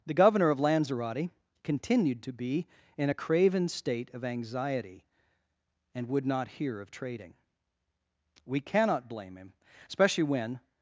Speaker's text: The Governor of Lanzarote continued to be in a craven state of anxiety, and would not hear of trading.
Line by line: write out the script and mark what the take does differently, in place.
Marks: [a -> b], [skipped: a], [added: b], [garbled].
The Governor of Lanzarote continued to be in a craven state of anxiety, and would not hear of trading. [added: We cannot blame him especially when]